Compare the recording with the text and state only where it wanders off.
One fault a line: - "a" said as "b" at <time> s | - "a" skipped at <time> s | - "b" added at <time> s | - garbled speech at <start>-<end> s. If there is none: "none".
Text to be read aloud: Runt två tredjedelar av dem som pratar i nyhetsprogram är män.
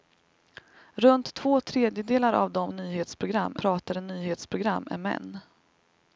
- "som" said as "nyhetsprogram" at 2.7 s